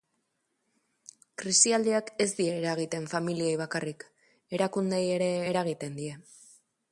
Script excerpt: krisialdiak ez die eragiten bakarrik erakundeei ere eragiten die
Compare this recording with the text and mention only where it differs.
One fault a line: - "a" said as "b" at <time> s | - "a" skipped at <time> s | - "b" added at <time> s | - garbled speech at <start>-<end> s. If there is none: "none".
- "familiei" added at 3.1 s